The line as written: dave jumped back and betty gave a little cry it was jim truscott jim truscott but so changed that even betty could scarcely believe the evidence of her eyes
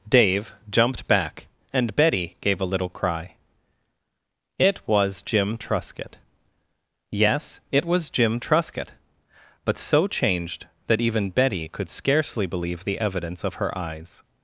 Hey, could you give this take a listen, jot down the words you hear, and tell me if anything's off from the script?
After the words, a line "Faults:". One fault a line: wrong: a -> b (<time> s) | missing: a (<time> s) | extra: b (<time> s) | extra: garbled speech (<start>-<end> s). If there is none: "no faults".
dave jumped back and betty gave a little cry it was jim truscott yes it was jim truscott but so changed that even betty could scarcely believe the evidence of her eyes
Faults:
extra: yes it was (7.1 s)